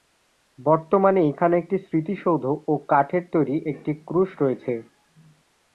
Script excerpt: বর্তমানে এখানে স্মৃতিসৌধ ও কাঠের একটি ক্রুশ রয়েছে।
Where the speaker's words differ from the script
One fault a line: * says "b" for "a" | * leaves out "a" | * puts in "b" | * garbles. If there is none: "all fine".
* puts in "একটি"
* puts in "তৈরি"